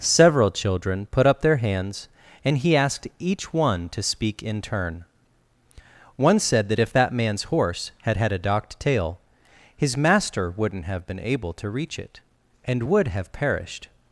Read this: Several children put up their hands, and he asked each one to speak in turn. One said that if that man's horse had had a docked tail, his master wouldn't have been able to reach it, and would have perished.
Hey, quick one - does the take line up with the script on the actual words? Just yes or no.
yes